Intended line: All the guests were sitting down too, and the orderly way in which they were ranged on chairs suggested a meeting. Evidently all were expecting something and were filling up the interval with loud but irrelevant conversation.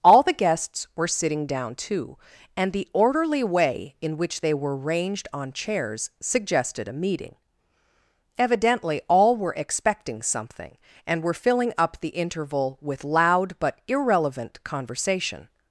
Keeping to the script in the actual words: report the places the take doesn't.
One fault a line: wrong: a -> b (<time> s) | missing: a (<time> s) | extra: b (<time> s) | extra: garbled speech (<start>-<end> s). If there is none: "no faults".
no faults